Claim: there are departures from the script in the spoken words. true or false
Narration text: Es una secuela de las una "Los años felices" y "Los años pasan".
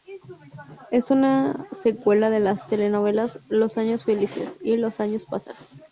true